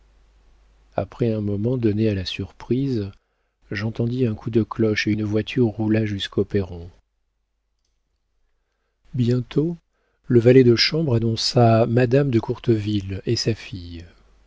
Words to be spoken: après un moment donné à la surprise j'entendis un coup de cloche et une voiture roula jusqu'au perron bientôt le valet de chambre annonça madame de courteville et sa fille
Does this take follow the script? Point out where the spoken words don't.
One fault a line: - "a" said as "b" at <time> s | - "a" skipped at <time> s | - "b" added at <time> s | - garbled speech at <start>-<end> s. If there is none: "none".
none